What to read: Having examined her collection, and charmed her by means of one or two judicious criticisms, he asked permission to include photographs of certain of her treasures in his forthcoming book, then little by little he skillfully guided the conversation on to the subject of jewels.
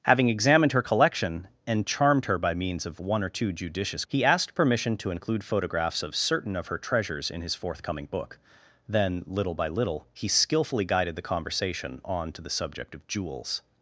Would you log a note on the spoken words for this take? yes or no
yes